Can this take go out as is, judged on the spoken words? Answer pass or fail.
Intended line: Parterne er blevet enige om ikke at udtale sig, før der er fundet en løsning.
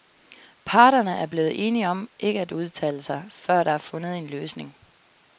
pass